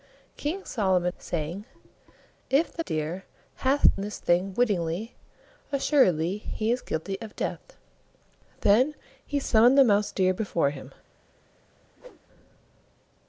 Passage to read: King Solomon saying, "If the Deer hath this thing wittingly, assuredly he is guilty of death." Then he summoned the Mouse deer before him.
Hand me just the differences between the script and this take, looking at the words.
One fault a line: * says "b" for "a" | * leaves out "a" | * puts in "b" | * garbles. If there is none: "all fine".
all fine